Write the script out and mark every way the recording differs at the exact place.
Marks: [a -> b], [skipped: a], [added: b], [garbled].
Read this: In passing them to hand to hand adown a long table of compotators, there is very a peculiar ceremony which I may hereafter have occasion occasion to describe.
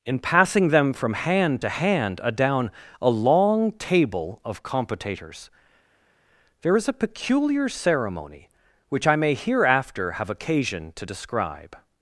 In passing them [to -> from] hand to hand adown a long table of compotators, there is [skipped: very] a peculiar ceremony which I may hereafter have occasion [skipped: occasion] to describe.